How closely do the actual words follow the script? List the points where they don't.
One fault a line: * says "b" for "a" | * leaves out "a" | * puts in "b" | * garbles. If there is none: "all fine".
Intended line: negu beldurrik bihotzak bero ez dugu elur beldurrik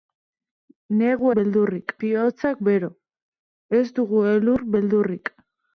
all fine